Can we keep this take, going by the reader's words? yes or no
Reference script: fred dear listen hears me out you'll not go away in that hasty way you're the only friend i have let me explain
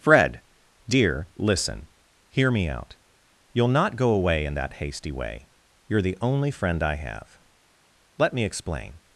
no